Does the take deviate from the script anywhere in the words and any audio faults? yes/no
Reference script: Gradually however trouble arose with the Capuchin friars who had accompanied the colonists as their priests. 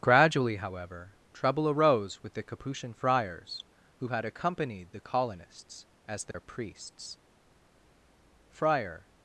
yes